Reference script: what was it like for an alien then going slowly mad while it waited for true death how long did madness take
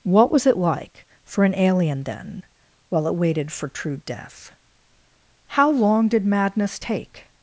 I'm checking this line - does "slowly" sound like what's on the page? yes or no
no